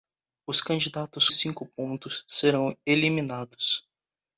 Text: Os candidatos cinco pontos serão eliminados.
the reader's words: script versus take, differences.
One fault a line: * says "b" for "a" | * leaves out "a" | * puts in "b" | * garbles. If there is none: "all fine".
all fine